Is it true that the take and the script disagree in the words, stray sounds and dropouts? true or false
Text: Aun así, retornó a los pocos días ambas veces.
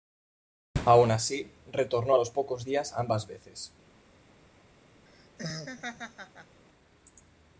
true